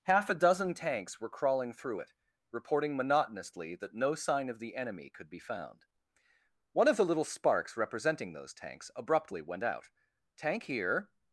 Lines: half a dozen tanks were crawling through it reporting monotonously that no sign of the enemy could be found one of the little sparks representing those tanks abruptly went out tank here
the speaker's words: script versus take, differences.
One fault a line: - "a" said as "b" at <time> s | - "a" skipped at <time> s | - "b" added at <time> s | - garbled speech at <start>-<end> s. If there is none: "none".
none